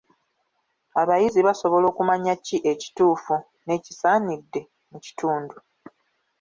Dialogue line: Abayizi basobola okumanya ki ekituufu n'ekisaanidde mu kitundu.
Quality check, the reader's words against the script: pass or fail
pass